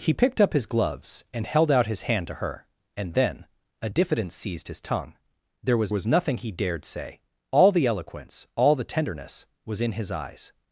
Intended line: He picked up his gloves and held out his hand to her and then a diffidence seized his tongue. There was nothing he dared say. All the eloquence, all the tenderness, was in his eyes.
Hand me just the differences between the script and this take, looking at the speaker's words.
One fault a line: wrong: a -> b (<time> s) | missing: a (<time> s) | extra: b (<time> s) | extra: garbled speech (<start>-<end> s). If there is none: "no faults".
extra: was (5.9 s)